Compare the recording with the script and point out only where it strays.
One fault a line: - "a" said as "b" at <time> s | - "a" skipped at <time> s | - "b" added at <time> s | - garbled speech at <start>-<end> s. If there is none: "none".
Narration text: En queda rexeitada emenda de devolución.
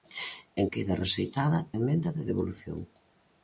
none